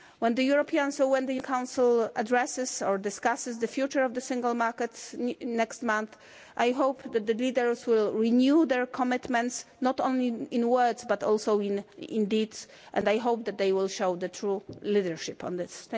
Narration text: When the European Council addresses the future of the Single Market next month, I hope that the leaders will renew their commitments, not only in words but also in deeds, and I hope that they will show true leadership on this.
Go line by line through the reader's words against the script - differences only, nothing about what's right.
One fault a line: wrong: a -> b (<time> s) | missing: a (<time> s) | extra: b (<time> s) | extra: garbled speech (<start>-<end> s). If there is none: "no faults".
extra: or discusses (2.8 s)